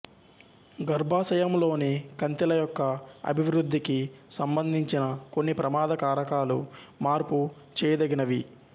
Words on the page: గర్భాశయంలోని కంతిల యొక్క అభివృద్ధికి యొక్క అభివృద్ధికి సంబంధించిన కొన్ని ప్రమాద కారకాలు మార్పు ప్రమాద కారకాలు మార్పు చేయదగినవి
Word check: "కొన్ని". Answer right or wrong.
right